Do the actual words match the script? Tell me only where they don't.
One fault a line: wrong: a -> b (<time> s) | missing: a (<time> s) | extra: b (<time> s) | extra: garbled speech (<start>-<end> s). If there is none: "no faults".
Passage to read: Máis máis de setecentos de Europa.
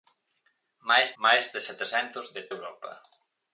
no faults